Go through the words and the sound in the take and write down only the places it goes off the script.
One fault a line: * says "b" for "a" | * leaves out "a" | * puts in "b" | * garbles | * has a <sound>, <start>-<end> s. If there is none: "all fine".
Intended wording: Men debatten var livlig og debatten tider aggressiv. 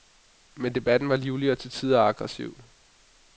* says "til" for "debatten"